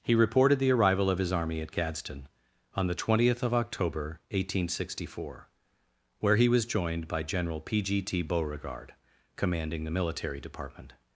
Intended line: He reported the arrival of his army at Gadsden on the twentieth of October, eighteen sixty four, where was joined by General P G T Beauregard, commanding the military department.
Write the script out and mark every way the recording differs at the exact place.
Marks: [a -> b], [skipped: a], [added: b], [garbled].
He reported the arrival of his army at Gadsden on the twentieth of October, eighteen sixty four, where [added: he] was joined by General P G T Beauregard, commanding the military department.